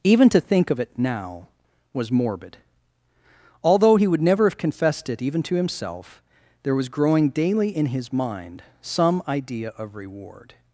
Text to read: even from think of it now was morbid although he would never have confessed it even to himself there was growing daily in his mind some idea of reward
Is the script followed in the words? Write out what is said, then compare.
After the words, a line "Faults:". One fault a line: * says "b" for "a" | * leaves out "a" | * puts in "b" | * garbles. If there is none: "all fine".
even to think of it now was morbid although he would never have confessed it even to himself there was growing daily in his mind some idea of reward
Faults:
* says "to" for "from"